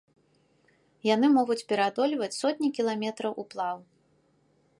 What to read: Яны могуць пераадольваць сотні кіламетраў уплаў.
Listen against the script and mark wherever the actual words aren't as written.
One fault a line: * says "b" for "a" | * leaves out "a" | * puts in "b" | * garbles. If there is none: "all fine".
all fine